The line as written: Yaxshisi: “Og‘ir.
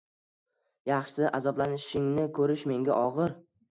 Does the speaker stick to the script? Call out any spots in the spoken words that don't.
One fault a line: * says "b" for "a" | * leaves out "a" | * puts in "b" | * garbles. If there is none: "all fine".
* puts in "Azoblanishingni ko‘rish menga"